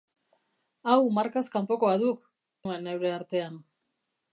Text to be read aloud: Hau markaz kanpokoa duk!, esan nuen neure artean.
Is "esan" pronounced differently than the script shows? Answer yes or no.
yes